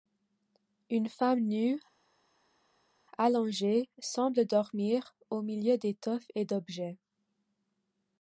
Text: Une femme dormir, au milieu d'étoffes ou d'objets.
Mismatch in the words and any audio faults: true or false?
true